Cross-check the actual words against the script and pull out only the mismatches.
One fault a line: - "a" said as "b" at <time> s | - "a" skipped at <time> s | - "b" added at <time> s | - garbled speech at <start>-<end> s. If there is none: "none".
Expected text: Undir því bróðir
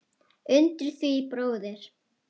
none